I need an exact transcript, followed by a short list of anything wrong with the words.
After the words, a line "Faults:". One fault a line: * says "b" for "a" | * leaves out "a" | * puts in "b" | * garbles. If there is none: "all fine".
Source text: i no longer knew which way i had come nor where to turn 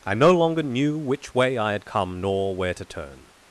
i no longer knew which way i had come nor where to turn
Faults:
all fine